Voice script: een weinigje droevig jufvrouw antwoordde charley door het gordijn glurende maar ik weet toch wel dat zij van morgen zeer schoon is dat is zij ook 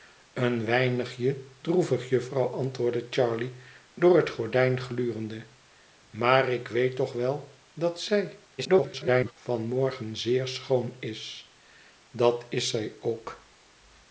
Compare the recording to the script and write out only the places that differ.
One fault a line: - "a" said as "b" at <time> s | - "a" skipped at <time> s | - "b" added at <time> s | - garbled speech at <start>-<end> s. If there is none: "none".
- garbled speech at 8.6-9.3 s